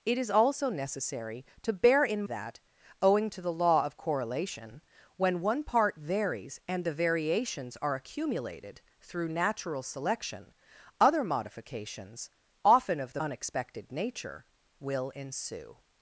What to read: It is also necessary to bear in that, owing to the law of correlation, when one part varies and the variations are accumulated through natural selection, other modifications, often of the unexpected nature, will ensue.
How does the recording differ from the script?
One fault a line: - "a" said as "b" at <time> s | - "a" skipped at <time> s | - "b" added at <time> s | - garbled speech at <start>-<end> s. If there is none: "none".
none